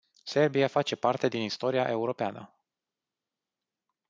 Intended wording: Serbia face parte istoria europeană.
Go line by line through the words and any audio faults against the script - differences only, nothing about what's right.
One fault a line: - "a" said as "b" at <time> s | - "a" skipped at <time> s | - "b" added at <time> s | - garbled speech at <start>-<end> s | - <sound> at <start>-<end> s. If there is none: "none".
- "din" added at 1.3 s